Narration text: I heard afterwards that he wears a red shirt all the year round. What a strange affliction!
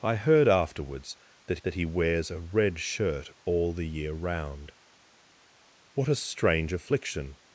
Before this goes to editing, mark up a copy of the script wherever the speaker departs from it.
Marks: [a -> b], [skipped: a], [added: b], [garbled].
I heard afterwards that [added: that] he wears a red shirt all the year round. What a strange affliction!